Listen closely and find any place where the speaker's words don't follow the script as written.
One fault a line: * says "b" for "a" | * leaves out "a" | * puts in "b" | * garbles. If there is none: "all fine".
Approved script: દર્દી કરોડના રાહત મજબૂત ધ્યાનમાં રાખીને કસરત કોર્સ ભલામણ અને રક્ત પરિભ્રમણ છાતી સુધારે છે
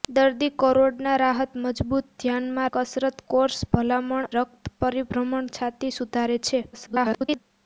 * leaves out "રાખીને"
* leaves out "અને"
* garbles